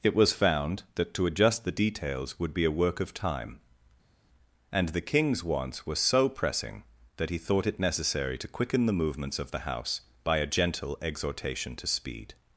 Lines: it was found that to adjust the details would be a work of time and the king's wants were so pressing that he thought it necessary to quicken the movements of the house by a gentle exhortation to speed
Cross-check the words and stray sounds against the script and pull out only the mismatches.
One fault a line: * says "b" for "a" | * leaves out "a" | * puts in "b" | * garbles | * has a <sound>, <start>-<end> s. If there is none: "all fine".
all fine